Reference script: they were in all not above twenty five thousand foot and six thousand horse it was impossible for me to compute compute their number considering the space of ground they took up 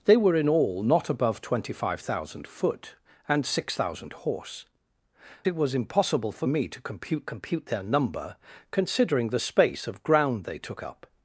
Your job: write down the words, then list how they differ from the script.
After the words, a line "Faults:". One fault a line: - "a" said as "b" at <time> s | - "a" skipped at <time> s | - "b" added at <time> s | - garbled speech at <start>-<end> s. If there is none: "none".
they were in all not above twenty five thousand foot and six thousand horse it was impossible for me to compute compute their number considering the space of ground they took up
Faults:
none